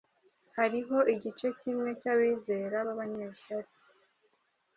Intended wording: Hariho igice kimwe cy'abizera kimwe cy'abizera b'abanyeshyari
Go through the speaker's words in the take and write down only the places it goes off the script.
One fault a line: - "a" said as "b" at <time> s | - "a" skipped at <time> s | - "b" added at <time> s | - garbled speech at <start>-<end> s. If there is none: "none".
- "kimwe cy'abizera" skipped at 2.8 s